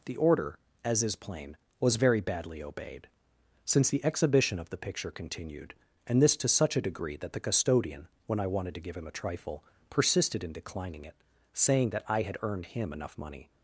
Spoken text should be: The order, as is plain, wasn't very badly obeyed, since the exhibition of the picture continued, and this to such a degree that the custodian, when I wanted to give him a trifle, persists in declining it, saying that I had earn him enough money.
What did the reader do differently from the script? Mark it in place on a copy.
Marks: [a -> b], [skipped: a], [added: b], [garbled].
The order, as is plain, [wasn't -> was] very badly obeyed, since the exhibition of the picture continued, and this to such a degree that the custodian, when I wanted to give him a trifle, [persists -> persisted] in declining it, saying that I had [earn -> earned] him enough money.